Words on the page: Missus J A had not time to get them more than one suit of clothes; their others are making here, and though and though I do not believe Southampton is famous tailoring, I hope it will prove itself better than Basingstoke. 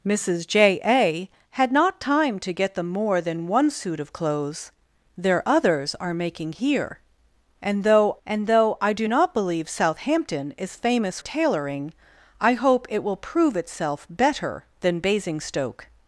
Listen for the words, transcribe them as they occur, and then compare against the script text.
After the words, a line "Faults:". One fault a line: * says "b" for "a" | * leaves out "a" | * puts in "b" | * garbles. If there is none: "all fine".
Missus J A had not time to get them more than one suit of clothes; their others are making here, and though and though I do not believe Southampton is famous tailoring, I hope it will prove itself better than Basingstoke.
Faults:
all fine